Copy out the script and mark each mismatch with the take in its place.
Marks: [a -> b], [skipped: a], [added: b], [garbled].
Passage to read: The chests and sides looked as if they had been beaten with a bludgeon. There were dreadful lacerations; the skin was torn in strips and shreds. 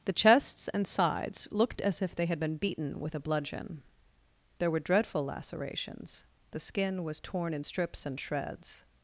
The chests and sides looked as if they had been beaten with a bludgeon. There were dreadful lacerations; the skin was torn in strips and shreds.